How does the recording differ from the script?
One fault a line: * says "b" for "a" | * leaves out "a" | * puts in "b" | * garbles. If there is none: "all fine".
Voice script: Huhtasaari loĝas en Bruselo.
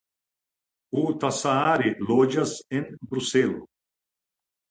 all fine